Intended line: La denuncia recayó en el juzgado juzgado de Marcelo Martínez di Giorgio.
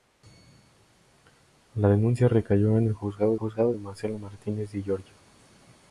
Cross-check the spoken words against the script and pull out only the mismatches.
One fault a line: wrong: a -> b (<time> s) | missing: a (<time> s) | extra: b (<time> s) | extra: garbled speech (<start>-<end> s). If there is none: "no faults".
no faults